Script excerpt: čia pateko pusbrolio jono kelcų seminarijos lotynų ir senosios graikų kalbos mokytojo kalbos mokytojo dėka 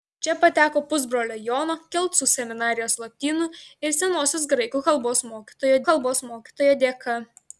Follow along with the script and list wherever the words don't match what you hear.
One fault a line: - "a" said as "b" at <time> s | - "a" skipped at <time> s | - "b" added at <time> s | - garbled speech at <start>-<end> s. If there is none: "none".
none